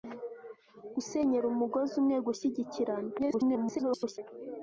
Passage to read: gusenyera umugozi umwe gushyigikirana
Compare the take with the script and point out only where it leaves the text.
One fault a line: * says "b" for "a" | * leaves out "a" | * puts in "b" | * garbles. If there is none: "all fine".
* garbles